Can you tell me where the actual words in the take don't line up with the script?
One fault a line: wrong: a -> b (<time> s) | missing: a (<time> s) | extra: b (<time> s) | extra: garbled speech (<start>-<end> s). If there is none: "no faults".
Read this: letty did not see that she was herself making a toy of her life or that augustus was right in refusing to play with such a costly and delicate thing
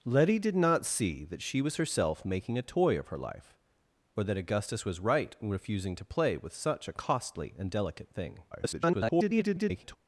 extra: garbled speech (8.5-10.0 s)